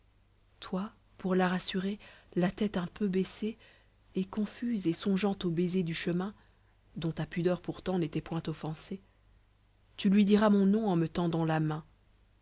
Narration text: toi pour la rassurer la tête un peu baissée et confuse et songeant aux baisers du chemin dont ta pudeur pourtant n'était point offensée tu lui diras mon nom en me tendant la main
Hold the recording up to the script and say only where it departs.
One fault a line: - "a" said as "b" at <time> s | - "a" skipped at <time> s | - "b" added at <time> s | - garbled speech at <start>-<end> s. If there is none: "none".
none